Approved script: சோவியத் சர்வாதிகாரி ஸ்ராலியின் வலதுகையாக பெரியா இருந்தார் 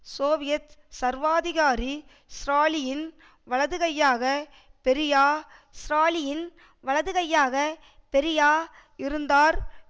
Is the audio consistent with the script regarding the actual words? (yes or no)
no